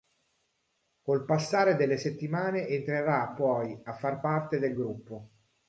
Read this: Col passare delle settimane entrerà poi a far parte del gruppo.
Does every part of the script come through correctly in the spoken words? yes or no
yes